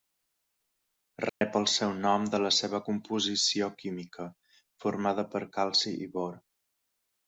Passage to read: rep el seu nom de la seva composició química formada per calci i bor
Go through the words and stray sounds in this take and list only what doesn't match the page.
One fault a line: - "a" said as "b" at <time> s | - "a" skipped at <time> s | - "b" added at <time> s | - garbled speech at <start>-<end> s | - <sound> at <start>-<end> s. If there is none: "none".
- dropout at 1.3-1.4 s